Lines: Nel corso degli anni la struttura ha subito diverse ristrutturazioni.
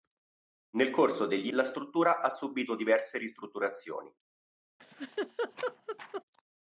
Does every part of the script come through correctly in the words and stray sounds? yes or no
no